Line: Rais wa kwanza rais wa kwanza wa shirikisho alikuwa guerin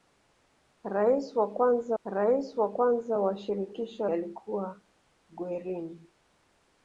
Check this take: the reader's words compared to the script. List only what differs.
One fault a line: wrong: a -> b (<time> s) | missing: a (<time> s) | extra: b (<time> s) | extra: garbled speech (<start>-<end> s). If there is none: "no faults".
no faults